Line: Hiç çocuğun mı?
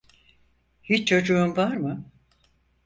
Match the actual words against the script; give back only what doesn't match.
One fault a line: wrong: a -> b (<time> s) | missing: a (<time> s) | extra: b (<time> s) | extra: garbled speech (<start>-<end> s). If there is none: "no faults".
extra: var (1.6 s)